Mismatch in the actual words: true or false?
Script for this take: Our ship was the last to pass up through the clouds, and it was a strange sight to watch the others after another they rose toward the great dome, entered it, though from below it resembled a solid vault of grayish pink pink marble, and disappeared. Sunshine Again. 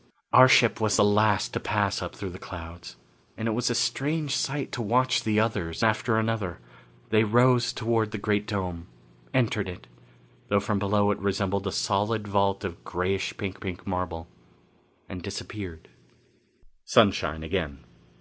false